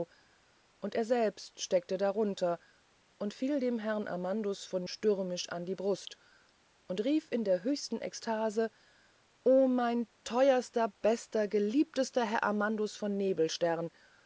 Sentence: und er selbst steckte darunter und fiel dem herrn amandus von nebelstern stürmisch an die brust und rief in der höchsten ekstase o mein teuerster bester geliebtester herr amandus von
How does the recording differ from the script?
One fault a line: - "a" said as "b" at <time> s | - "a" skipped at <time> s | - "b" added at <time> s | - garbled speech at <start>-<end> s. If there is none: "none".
- "nebelstern" skipped at 4.9 s